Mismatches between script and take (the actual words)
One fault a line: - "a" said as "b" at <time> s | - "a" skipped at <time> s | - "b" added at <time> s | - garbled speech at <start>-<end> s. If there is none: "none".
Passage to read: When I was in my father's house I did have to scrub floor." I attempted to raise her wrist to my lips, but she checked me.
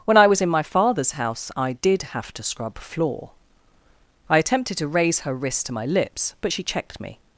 none